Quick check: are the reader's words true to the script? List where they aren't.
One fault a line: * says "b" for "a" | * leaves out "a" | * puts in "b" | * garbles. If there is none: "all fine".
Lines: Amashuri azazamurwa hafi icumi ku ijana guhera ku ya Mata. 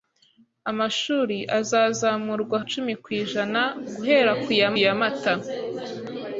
* leaves out "hafi"
* puts in "ya"